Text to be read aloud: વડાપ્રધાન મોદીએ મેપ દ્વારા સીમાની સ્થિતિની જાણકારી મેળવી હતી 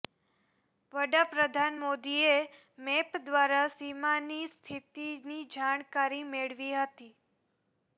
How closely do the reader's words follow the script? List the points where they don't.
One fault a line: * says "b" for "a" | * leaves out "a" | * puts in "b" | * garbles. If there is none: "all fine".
all fine